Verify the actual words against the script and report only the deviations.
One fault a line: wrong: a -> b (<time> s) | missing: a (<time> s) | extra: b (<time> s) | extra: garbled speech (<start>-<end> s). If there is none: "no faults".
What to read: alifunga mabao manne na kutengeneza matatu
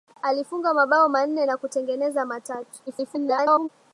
extra: garbled speech (2.9-3.7 s)